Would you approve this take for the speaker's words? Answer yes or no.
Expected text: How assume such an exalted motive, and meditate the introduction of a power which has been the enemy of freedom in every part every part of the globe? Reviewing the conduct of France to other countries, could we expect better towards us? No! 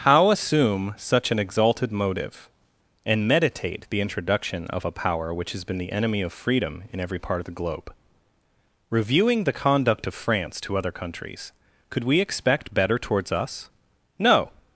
no